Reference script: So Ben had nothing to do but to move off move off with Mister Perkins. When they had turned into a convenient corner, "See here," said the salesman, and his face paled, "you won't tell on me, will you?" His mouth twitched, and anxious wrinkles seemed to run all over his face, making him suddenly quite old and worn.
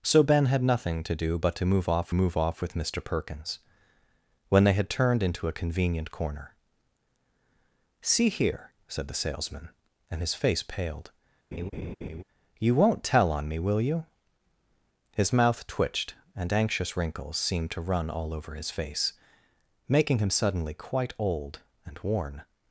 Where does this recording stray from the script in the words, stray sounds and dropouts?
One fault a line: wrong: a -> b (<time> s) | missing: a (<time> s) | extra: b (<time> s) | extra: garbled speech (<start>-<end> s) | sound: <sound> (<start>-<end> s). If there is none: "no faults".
sound: laugh (11.5-12.2 s)